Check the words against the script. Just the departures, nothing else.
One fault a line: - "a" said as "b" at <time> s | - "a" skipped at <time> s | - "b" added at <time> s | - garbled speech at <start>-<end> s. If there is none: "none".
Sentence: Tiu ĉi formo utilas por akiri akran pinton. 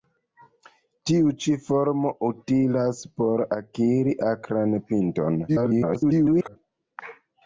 - garbled speech at 5.5-6.6 s